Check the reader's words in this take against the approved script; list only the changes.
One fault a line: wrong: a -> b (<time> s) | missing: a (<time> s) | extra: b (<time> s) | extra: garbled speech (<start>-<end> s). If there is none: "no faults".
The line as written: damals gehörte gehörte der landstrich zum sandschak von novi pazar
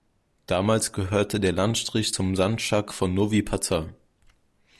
missing: gehörte (1.4 s)